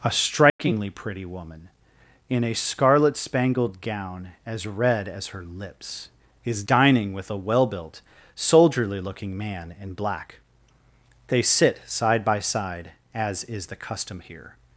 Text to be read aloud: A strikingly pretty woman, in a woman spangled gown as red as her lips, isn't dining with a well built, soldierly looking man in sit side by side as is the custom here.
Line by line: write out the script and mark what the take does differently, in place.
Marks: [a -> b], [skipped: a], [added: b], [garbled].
A strikingly pretty woman, in a [woman -> scarlet] spangled gown as red as her lips, [isn't -> is] dining with a well built, soldierly looking man in [added: black they] sit side by side as is the custom here.